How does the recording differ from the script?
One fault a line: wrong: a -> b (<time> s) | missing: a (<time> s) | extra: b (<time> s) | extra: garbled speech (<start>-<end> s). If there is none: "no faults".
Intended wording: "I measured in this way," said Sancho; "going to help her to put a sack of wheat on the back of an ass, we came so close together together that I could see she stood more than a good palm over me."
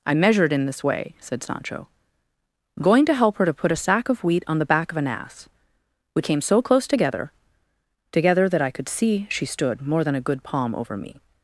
no faults